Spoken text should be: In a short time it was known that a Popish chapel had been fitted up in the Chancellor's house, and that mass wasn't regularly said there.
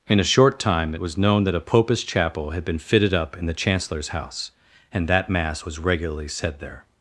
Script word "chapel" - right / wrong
right